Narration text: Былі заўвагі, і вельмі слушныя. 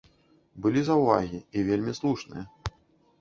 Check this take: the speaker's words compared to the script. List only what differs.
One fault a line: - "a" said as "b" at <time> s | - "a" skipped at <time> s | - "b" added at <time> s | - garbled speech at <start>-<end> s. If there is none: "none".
none